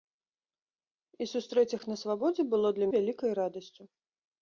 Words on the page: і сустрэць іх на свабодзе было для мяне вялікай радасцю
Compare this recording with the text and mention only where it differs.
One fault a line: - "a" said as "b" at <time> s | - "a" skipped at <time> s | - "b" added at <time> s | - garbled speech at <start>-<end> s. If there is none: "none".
- "мяне" skipped at 2.9 s